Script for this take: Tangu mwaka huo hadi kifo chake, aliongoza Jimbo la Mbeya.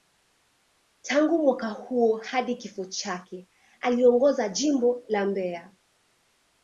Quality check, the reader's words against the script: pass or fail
pass